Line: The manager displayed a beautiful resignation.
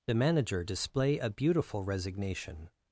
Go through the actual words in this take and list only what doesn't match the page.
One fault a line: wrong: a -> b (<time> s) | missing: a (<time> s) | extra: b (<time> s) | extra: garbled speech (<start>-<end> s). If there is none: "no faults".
wrong: displayed -> display (0.6 s)